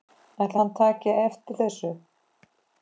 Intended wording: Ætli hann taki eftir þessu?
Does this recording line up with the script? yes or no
yes